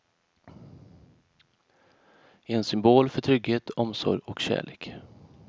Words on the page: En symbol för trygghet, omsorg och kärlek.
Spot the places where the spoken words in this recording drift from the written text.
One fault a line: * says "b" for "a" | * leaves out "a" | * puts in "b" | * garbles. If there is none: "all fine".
all fine